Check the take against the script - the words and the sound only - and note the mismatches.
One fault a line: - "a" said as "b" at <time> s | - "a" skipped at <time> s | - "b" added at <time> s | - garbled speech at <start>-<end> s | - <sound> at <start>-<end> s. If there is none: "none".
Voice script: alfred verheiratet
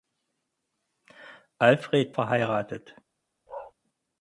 - bark at 3.5-3.7 s